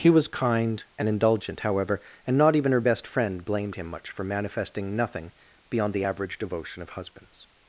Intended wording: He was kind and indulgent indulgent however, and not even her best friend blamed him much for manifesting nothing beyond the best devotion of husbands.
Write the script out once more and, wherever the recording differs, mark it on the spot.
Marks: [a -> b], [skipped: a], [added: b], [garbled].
He was kind and indulgent [skipped: indulgent] however, and not even her best friend blamed him much for manifesting nothing beyond the [best -> average] devotion of husbands.